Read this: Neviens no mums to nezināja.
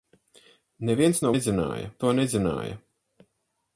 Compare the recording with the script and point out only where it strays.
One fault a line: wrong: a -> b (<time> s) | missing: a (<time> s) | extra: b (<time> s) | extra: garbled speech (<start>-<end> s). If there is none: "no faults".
wrong: mums -> nezināja (1.3 s)